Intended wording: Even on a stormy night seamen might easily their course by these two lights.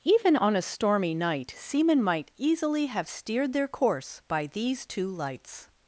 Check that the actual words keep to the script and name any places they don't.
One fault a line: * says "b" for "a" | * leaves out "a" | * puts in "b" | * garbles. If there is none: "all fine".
* puts in "have steered"